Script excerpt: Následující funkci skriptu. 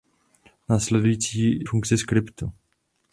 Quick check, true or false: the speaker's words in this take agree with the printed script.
true